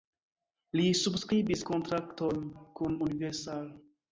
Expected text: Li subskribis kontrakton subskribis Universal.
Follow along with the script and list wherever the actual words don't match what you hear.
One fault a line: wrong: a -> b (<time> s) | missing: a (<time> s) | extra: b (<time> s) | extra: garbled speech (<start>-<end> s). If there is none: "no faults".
wrong: subskribis -> kun (2.8 s)